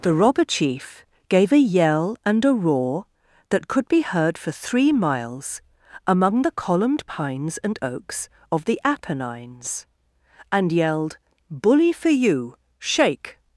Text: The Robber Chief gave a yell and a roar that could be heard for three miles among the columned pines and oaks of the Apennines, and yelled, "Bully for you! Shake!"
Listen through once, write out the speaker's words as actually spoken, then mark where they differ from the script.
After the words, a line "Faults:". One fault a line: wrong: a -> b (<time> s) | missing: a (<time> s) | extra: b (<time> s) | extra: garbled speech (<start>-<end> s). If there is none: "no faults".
The Robber Chief gave a yell and a roar that could be heard for three miles among the columned pines and oaks of the Apennines, and yelled, "Bully for you! Shake!"
Faults:
no faults